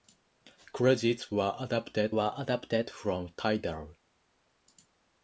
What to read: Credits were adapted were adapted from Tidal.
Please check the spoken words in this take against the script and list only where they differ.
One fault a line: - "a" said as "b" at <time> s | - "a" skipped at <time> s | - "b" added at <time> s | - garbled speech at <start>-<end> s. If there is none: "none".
none